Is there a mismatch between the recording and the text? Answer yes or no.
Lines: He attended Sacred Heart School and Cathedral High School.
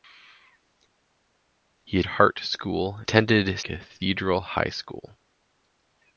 yes